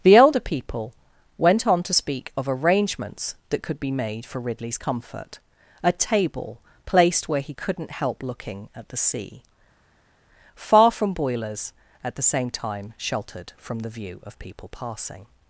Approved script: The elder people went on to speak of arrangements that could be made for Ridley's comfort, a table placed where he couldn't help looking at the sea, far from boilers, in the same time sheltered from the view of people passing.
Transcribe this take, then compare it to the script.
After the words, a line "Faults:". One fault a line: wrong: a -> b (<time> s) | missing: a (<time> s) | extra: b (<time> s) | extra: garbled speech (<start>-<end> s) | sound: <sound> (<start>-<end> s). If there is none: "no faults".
The elder people went on to speak of arrangements that could be made for Ridley's comfort, a table placed where he couldn't help looking at the sea, far from boilers, at the same time sheltered from the view of people passing.
Faults:
wrong: in -> at (12.0 s)